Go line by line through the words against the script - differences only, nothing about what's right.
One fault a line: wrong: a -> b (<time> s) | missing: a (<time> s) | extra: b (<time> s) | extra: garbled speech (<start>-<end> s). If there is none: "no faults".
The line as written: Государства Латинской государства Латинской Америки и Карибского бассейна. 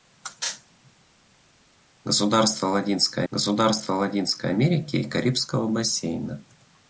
no faults